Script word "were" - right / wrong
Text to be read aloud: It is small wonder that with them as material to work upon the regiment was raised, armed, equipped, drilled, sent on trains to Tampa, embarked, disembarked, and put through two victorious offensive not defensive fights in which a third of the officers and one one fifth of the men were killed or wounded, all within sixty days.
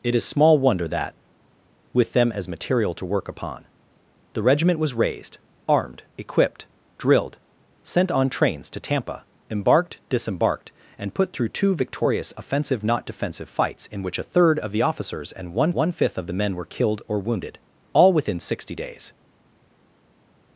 right